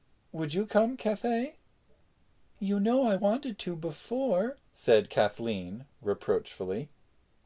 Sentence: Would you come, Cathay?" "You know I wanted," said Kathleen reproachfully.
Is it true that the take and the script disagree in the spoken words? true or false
true